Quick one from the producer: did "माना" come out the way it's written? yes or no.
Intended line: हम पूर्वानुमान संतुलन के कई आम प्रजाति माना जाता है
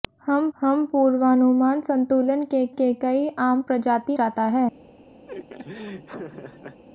no